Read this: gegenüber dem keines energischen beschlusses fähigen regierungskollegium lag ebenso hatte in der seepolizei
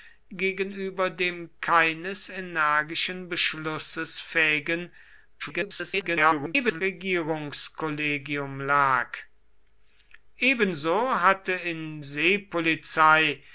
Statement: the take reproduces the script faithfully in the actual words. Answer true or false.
false